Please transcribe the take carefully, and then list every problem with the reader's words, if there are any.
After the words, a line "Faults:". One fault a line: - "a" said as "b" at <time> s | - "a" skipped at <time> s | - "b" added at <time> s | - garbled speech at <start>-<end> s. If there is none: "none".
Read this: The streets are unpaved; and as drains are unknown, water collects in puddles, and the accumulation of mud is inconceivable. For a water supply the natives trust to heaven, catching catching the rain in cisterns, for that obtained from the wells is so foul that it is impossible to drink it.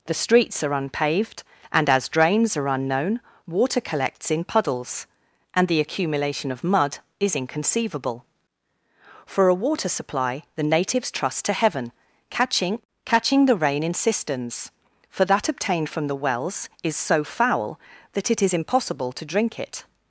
The streets are unpaved; and as drains are unknown, water collects in puddles, and the accumulation of mud is inconceivable. For a water supply the natives trust to heaven, catching catching the rain in cisterns, for that obtained from the wells is so foul that it is impossible to drink it.
Faults:
none